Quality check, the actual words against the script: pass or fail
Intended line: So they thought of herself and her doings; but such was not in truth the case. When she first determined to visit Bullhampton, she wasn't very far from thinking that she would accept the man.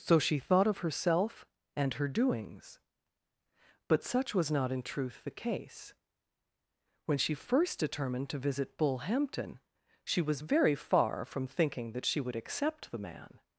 fail